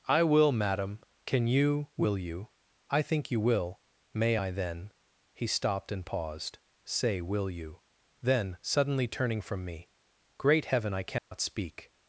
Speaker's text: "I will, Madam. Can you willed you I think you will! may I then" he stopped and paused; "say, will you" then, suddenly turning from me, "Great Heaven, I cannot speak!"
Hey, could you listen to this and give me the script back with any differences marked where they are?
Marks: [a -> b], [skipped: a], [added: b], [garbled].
"I will, Madam. Can you [willed -> will] you I think you will! may I then" he stopped and paused; "say, will you" then, suddenly turning from me, "Great Heaven, I cannot speak!"